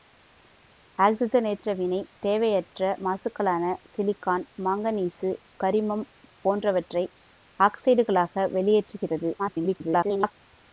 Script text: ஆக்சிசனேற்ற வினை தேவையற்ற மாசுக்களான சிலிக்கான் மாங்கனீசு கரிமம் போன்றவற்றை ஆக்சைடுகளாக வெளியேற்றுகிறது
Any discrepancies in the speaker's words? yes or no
yes